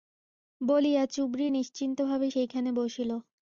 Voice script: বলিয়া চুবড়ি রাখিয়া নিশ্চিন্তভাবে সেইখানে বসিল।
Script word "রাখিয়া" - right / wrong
wrong